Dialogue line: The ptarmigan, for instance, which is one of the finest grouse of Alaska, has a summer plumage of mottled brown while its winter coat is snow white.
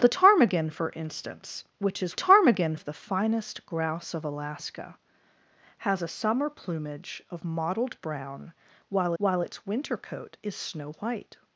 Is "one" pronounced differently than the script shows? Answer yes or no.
yes